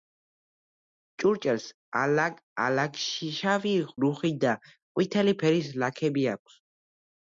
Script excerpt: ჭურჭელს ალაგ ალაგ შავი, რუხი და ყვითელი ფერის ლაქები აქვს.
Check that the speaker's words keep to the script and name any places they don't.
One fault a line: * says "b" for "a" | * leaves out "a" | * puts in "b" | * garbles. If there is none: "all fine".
all fine